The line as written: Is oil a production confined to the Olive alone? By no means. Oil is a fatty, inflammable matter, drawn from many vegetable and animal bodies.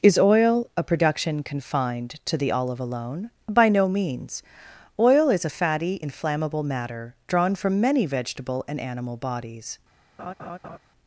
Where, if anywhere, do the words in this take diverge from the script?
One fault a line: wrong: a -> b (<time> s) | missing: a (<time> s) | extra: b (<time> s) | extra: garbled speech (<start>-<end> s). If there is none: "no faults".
no faults